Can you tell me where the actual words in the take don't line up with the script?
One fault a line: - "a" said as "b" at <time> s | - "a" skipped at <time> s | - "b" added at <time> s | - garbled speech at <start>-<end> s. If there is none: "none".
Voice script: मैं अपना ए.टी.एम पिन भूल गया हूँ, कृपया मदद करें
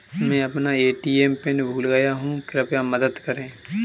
none